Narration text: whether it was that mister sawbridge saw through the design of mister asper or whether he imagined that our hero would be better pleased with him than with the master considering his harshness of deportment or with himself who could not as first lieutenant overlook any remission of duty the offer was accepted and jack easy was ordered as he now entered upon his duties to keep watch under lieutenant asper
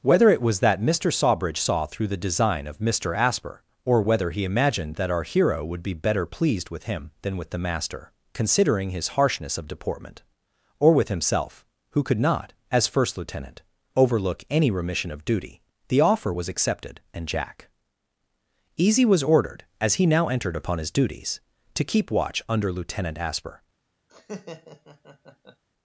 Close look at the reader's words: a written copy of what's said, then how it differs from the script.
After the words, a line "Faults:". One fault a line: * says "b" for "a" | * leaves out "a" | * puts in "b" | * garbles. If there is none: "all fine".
whether it was that mister sawbridge saw through the design of mister asper or whether he imagined that our hero would be better pleased with him than with the master considering his harshness of deportment or with himself who could not as first lieutenant overlook any remission of duty the offer was accepted and jack easy was ordered as he now entered upon his duties to keep watch under lieutenant asper
Faults:
all fine